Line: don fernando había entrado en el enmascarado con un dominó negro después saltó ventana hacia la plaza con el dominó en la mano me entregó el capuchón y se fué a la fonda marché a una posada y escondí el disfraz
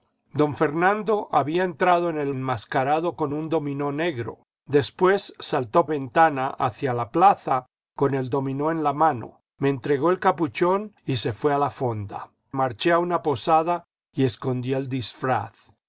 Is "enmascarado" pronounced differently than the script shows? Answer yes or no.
no